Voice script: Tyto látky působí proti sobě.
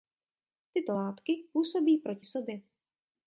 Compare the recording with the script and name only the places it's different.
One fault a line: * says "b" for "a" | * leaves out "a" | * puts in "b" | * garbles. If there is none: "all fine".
all fine